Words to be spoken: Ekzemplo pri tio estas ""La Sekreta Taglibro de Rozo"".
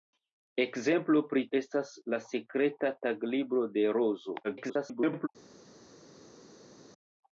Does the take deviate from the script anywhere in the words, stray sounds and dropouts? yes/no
yes